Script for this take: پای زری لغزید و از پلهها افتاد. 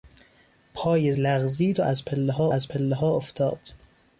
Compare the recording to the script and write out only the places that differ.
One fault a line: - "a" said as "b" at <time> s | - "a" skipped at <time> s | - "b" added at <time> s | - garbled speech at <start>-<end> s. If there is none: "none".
- "زری" skipped at 1.1 s
- "از پلهها" added at 2.5 s